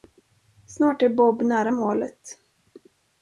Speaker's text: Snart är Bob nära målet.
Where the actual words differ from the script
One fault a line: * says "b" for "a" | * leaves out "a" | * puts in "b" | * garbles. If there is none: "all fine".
all fine